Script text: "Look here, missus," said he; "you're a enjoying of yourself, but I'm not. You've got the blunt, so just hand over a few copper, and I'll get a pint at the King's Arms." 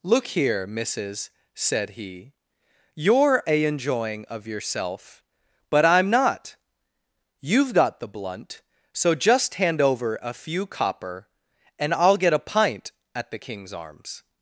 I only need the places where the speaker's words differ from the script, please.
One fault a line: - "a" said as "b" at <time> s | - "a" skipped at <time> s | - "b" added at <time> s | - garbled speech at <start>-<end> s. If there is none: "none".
none